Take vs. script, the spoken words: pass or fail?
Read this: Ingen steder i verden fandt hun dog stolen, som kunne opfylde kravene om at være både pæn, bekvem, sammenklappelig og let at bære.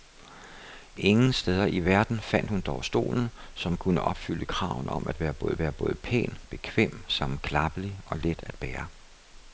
fail